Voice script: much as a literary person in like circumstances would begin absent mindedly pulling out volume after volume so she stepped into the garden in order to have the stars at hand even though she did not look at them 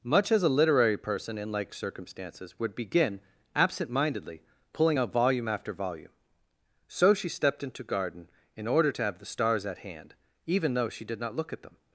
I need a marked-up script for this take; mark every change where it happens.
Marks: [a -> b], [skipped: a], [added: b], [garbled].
much as a literary person in like circumstances would begin absent mindedly pulling out volume after volume so she stepped into [skipped: the] garden in order to have the stars at hand even though she did not look at them